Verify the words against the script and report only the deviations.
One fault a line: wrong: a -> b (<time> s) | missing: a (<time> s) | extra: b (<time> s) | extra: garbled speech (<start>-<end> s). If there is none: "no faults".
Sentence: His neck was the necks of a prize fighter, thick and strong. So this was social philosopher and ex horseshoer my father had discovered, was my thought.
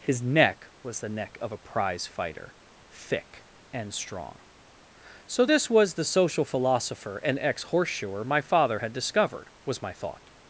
wrong: necks -> neck (1.1 s)
extra: the (5.9 s)